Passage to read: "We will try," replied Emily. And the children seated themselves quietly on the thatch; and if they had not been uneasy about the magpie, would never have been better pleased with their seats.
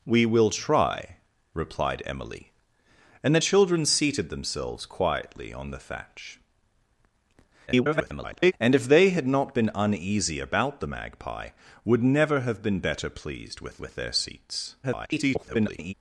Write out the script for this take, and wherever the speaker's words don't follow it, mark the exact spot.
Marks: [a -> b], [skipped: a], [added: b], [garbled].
"We will try," replied Emily. And the children seated themselves quietly on the thatch; [garbled] and if they had not been uneasy about the magpie, would never have been better pleased with [added: with] their seats. [garbled]